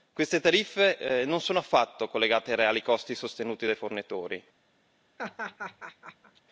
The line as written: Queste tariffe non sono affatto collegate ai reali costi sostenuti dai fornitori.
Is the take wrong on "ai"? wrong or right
right